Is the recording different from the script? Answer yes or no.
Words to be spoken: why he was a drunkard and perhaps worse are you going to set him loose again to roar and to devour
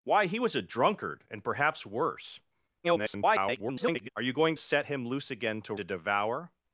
yes